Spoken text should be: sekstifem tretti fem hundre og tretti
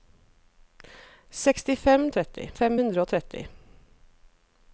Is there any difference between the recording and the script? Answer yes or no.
no